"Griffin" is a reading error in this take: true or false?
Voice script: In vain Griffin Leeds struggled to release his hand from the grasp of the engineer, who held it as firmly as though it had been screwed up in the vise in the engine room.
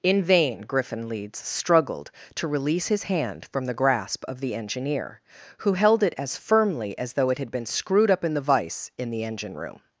false